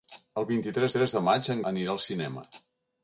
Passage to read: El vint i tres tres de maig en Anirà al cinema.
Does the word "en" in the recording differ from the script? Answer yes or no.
no